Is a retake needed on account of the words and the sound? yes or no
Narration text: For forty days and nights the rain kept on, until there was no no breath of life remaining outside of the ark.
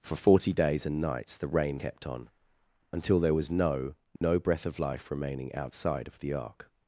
yes